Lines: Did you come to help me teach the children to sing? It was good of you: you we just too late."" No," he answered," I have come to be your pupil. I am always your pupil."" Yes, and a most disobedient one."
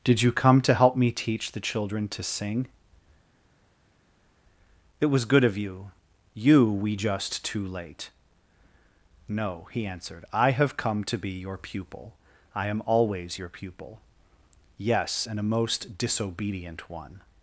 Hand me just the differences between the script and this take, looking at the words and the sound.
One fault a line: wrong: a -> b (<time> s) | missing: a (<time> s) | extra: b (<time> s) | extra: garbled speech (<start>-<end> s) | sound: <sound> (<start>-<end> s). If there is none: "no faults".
no faults